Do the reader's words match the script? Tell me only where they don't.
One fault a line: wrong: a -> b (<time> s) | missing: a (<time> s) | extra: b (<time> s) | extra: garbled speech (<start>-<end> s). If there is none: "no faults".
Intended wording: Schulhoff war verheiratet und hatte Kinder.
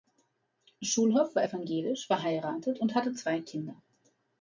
extra: evangelisch (1.4 s)
extra: zwei (3.1 s)